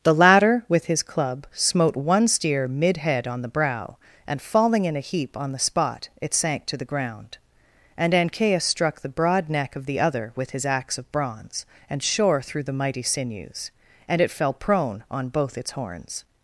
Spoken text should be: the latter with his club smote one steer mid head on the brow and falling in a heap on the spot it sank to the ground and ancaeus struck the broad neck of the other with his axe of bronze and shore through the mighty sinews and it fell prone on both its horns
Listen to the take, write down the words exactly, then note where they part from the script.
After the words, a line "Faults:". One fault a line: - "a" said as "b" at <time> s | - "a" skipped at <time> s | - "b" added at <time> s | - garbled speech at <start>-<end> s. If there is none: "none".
the latter with his club smote one steer mid head on the brow and falling in a heap on the spot it sank to the ground and ancaeus struck the broad neck of the other with his axe of bronze and shore through the mighty sinews and it fell prone on both its horns
Faults:
none